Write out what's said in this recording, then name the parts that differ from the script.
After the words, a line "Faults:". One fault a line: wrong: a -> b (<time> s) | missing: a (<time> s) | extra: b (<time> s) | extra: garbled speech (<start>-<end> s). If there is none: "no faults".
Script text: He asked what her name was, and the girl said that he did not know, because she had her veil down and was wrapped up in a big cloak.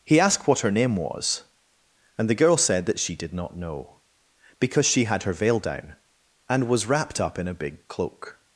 He asked what her name was, and the girl said that she did not know, because she had her veil down and was wrapped up in a big cloak.
Faults:
wrong: he -> she (3.0 s)